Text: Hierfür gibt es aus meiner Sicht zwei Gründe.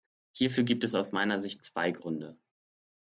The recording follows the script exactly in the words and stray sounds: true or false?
true